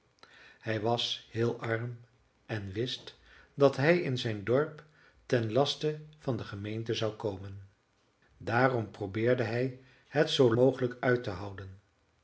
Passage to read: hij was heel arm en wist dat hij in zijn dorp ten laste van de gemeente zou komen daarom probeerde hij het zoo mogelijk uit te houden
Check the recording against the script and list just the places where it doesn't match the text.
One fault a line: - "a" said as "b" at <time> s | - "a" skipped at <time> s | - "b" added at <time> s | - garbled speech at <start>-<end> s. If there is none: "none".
none